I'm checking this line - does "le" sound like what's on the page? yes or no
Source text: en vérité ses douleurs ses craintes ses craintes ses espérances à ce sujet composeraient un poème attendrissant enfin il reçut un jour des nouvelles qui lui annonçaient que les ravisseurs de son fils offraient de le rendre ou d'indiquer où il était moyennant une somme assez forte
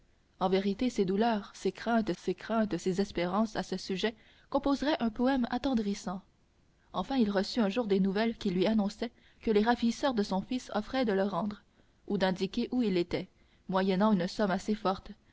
yes